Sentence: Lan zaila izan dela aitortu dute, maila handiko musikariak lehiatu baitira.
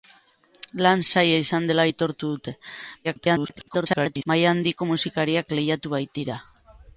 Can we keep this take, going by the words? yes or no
no